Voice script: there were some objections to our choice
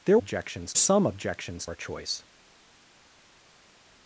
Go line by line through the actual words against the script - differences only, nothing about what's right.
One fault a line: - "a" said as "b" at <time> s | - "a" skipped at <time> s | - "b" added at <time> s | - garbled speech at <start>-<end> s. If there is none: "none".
- "were" said as "objections" at 0.2 s
- "to" skipped at 1.7 s